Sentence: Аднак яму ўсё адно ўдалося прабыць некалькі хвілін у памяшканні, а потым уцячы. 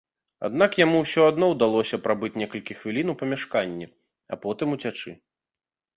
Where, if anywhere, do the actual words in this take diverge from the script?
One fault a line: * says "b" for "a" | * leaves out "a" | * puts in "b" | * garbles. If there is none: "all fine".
all fine